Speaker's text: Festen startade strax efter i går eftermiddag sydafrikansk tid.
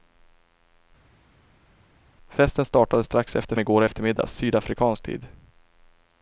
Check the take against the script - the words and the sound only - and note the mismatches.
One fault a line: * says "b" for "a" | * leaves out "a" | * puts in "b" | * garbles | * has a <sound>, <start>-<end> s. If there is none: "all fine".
all fine